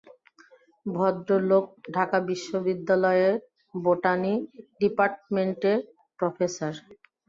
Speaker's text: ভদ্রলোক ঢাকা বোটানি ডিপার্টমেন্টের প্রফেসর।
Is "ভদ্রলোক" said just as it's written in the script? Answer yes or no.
yes